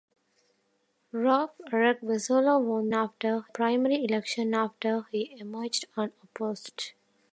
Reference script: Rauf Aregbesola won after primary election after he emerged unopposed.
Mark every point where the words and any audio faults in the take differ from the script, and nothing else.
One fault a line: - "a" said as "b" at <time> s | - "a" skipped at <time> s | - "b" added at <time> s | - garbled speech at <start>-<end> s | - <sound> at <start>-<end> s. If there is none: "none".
none